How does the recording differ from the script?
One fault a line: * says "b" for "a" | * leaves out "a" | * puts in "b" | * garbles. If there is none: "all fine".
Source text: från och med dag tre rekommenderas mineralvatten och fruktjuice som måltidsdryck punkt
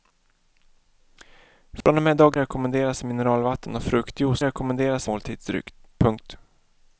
* leaves out "tre"
* says "rekommenderas" for "som"